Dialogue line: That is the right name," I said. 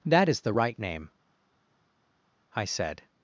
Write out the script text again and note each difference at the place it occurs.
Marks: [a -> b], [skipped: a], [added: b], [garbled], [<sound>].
That is the right name," I said.